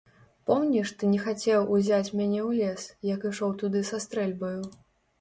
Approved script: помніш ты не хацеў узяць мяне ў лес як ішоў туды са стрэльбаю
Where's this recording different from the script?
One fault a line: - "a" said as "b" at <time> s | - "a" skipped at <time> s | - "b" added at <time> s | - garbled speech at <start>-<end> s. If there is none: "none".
none